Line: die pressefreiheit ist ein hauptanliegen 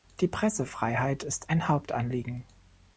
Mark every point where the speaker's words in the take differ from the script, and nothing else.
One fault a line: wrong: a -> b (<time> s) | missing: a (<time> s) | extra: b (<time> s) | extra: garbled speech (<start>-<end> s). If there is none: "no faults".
no faults